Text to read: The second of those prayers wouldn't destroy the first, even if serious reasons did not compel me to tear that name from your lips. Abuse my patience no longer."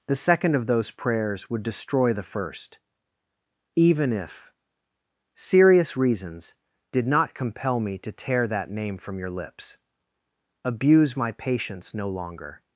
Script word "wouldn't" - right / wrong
wrong